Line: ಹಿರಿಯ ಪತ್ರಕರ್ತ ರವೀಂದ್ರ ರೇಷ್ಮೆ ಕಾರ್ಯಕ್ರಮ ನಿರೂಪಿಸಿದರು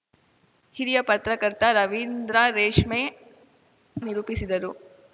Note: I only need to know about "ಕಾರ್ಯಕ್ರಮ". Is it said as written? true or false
false